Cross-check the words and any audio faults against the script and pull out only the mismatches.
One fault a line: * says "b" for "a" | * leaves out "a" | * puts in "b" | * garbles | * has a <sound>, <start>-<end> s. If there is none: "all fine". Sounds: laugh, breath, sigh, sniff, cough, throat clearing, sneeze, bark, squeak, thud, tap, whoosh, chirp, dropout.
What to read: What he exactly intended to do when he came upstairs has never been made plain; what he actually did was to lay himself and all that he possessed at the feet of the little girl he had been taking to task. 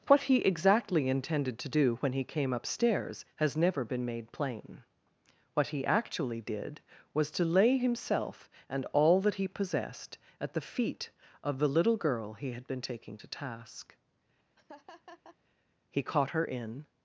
* has a laugh, 14.6-15.4 s
* puts in "He caught her in"